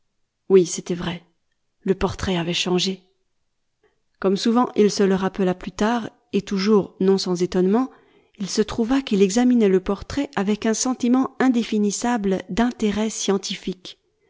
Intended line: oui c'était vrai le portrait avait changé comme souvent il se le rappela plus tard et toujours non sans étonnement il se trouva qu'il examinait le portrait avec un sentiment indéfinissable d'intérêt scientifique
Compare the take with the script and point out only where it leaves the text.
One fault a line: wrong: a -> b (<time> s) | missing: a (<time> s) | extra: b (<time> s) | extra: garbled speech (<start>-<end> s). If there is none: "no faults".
no faults